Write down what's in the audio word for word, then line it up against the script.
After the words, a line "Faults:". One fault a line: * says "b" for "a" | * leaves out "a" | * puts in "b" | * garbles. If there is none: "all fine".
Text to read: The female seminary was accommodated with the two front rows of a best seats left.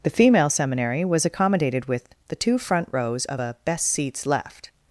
The female seminary was accommodated with the two front rows of a best seats left.
Faults:
all fine